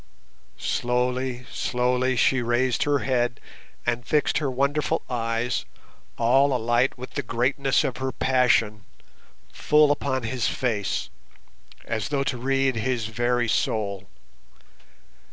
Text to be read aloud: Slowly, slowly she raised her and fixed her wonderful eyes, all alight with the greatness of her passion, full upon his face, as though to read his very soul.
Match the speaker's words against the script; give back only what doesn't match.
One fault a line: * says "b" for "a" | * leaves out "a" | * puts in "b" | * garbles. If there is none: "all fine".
* puts in "head"